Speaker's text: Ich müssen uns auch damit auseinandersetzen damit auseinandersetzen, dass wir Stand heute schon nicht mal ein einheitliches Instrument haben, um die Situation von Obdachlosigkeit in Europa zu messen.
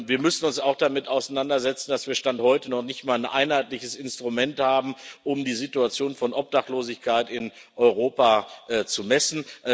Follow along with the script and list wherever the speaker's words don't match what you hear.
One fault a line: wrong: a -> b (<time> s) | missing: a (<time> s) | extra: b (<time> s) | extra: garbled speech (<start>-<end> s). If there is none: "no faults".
wrong: Ich -> Wir (0.1 s)
missing: damit auseinandersetzen (1.9 s)
wrong: schon -> noch (2.7 s)